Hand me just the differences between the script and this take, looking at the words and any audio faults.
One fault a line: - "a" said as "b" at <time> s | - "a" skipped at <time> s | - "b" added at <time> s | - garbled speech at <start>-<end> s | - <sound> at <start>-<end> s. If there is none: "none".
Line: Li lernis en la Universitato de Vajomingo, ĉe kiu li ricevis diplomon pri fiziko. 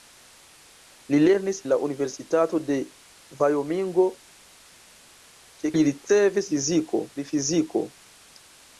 - "en" skipped at 1.6 s
- "kiu" skipped at 5.7 s
- "diplomon" said as "fiziko" at 6.5 s